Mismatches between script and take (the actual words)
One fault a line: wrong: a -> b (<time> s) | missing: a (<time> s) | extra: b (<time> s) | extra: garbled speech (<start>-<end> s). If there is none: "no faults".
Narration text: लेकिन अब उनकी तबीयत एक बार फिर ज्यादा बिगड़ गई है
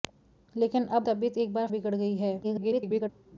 missing: उनकी (1.1 s)
missing: फिर ज्यादा (1.7 s)
extra: garbled speech (2.4-3.1 s)